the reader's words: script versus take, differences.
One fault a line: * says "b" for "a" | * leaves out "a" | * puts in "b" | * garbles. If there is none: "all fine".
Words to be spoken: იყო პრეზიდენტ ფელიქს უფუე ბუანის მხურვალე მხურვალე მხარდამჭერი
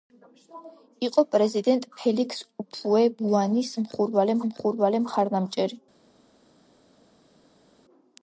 all fine